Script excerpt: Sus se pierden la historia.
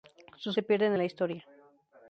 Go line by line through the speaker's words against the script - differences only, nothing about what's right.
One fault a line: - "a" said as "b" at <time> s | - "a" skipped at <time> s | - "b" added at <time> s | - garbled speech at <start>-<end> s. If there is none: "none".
none